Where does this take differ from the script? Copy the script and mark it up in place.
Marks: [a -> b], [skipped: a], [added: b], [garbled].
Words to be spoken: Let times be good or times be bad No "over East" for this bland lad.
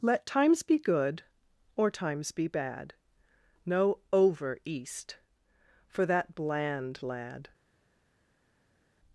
Let times be good or times be bad No "over East" for [this -> that] bland lad.